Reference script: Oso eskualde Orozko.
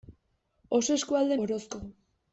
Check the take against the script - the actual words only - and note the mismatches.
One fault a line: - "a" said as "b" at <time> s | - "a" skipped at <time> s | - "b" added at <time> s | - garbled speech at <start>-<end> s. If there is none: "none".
none